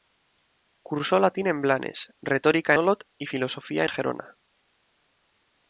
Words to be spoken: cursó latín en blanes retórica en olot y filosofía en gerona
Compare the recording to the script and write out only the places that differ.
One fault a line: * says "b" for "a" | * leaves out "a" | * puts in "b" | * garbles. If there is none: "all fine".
* leaves out "en"
* leaves out "en"